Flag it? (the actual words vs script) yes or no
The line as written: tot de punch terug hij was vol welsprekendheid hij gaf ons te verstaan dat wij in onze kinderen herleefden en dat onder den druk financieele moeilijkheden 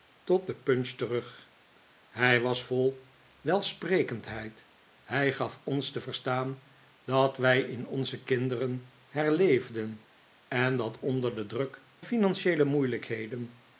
no